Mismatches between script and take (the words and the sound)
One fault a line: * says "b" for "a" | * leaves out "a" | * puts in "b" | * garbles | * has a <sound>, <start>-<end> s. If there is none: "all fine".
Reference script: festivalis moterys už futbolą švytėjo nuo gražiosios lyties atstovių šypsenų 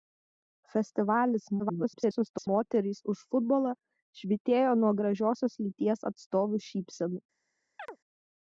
* garbles
* has a chirp, 7.8-8.0 s